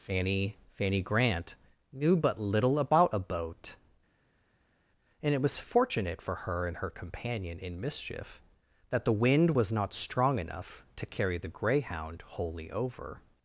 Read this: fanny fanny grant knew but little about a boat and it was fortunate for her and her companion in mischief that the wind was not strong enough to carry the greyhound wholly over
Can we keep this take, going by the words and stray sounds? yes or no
yes